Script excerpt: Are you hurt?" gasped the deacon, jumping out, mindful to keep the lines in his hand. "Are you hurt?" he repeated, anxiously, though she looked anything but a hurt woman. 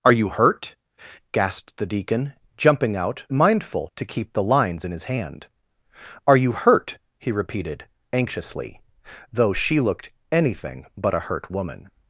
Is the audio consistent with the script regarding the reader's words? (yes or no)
yes